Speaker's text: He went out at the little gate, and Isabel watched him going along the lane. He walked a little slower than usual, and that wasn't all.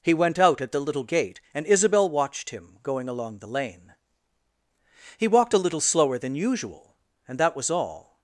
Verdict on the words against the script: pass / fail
fail